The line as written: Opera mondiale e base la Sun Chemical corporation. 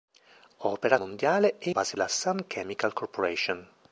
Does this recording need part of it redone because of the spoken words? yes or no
no